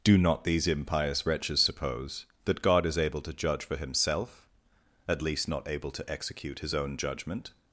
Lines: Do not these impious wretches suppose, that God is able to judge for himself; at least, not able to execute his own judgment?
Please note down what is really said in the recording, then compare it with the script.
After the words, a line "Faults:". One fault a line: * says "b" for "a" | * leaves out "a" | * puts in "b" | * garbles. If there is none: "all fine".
Do not these impious wretches suppose, that God is able to judge for himself; at least, not able to execute his own judgment?
Faults:
all fine